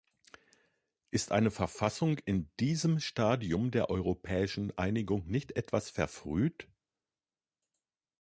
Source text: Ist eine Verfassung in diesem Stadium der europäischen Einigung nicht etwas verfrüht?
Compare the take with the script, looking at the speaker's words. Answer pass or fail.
pass